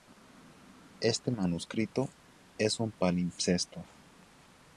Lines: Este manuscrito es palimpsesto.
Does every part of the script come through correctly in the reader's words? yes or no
no